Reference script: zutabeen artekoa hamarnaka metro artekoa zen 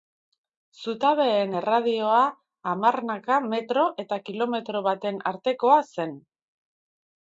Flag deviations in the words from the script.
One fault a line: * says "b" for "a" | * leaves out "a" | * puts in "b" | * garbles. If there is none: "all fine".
* says "erradioa" for "artekoa"
* puts in "eta kilometro baten"